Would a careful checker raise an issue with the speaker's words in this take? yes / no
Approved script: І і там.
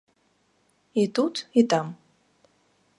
yes